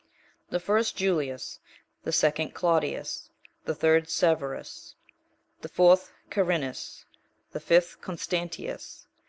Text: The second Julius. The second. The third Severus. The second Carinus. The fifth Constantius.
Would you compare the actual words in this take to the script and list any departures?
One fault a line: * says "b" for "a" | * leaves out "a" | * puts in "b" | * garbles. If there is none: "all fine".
* says "first" for "second"
* puts in "Claudius"
* says "fourth" for "second"